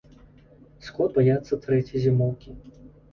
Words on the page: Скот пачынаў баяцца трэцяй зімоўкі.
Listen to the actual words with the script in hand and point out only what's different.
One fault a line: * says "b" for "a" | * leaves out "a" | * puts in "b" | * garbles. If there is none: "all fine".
* leaves out "пачынаў"